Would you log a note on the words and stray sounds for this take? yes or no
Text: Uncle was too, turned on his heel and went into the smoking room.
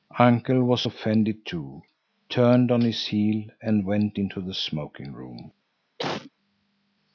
yes